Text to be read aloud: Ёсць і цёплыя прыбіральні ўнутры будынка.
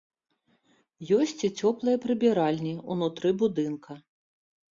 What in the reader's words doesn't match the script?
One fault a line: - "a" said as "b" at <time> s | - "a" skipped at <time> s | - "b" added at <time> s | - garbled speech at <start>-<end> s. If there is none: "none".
none